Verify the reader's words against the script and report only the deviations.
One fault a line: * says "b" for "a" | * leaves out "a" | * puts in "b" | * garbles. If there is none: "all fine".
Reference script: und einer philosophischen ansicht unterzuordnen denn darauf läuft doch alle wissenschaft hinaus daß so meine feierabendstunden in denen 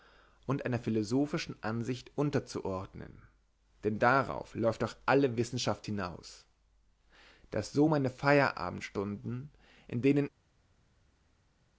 all fine